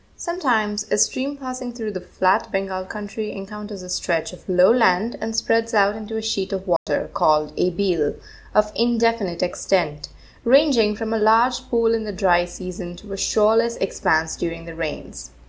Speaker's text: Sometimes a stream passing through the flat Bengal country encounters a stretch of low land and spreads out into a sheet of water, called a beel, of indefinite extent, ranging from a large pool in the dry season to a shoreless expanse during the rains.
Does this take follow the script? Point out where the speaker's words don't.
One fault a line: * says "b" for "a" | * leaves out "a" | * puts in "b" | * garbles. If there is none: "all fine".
all fine